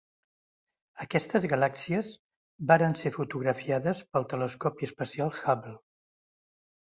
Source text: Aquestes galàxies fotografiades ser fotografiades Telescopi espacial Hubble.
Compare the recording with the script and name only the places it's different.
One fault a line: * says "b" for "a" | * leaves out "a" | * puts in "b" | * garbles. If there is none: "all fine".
* says "varen" for "fotografiades"
* puts in "pel"